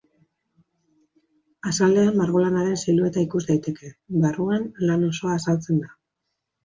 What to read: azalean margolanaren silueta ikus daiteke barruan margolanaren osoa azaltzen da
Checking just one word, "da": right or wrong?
right